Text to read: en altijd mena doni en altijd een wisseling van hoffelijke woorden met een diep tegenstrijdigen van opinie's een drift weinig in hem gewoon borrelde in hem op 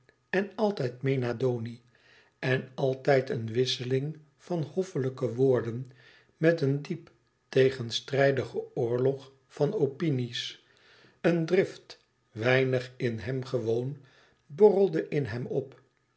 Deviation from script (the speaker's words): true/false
true